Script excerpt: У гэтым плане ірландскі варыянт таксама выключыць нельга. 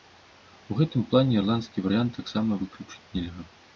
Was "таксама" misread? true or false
false